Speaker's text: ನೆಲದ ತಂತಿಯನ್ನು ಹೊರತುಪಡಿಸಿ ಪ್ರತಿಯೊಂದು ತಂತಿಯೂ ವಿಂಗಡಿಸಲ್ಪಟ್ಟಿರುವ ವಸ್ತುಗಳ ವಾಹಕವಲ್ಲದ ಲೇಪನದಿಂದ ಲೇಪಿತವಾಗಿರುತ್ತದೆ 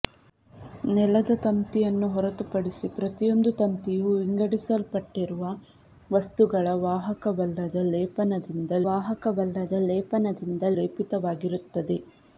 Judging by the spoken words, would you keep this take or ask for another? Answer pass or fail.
fail